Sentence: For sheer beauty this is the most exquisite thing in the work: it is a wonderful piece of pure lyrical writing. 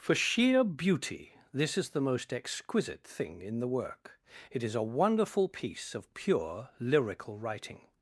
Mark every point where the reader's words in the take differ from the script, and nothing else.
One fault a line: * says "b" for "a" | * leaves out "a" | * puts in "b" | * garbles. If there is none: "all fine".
all fine